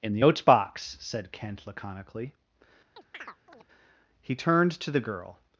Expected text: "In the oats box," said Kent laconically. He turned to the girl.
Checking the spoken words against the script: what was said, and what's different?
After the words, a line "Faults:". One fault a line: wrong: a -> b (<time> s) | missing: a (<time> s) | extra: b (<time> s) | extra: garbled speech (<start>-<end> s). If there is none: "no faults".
"In the oats box," said Kent laconically. He turned to the girl.
Faults:
no faults